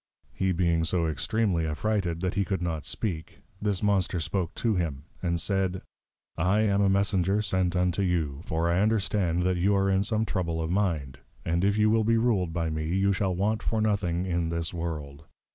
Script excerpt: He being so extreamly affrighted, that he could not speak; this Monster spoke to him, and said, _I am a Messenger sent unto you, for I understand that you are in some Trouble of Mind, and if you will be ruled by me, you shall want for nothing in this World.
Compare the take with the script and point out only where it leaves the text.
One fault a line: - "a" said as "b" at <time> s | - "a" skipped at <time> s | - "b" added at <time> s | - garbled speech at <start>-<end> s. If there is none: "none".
none